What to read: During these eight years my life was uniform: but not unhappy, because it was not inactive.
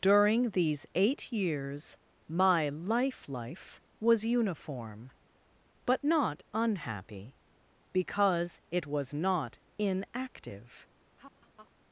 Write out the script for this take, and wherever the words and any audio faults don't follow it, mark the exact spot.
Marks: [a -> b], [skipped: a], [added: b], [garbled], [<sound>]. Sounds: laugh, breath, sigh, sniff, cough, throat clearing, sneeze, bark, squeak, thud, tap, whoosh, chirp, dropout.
During these eight years my life [added: life] was uniform: but not unhappy, because it was not inactive. [laugh]